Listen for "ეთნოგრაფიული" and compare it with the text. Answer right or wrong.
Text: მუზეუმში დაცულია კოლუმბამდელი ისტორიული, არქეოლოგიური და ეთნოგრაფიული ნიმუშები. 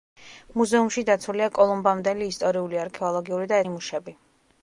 wrong